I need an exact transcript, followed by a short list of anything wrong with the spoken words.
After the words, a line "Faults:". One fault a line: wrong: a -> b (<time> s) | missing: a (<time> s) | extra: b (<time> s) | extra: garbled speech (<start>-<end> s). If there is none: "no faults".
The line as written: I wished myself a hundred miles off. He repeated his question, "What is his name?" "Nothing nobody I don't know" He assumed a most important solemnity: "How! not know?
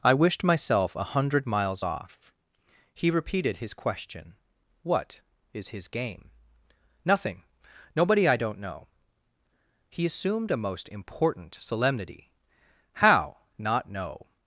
I wished myself a hundred miles off. He repeated his question, "What is his game?" "Nothing nobody I don't know" He assumed a most important solemnity: "How! not know?
Faults:
wrong: name -> game (5.9 s)